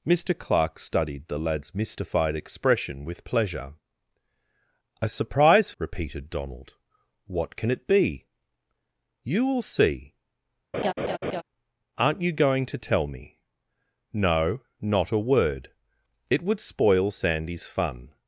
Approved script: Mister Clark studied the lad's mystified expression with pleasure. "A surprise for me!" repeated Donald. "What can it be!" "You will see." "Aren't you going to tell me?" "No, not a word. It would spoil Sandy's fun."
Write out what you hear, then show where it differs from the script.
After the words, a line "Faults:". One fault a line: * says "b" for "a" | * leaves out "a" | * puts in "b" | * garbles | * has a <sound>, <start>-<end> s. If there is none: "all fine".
Mister Clark studied the lad's mystified expression with pleasure. "A surprise!" repeated Donald. "What can it be!" "You will see." "Aren't you going to tell me?" "No, not a word. It would spoil Sandy's fun."
Faults:
* leaves out "for me"
* has a laugh, 10.7-11.4 s